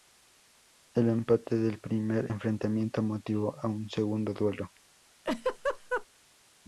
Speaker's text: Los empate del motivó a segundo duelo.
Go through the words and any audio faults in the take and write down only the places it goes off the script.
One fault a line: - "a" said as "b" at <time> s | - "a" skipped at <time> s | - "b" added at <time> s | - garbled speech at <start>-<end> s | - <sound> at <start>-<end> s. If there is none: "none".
- "Los" said as "El" at 0.9 s
- "primer enfrentamiento" added at 1.8 s
- "un" added at 3.7 s
- laugh at 5.2-6.1 s